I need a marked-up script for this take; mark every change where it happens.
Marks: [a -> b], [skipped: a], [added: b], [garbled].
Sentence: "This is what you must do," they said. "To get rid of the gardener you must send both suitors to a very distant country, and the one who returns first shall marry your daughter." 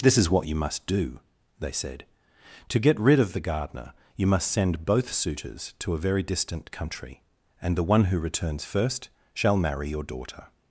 "This is what you must do," they said. "To get rid of the gardener you must send both suitors to a very distant country, and the one who returns first shall marry your daughter."